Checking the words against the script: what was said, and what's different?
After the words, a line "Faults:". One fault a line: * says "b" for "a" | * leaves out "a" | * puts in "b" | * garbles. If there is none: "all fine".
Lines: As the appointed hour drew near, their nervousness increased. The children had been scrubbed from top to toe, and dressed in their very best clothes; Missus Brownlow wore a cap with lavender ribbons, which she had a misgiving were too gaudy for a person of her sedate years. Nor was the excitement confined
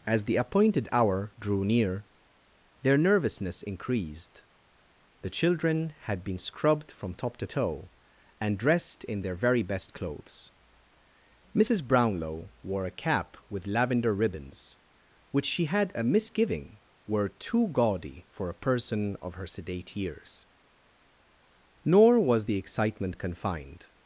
As the appointed hour drew near, their nervousness increased. The children had been scrubbed from top to toe, and dressed in their very best clothes; Missus Brownlow wore a cap with lavender ribbons, which she had a misgiving were too gaudy for a person of her sedate years. Nor was the excitement confined
Faults:
all fine